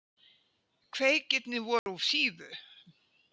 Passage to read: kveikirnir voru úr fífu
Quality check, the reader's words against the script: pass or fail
pass